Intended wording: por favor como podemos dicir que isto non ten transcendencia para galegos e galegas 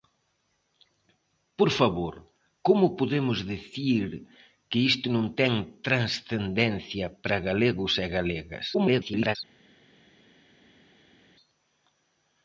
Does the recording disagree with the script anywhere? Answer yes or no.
yes